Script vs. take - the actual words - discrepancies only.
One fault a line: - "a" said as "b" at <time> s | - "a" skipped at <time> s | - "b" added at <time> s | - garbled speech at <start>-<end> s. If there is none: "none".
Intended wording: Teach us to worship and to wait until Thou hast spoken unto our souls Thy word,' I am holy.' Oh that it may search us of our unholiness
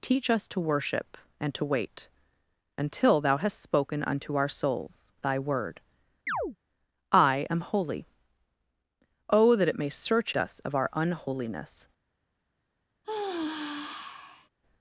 none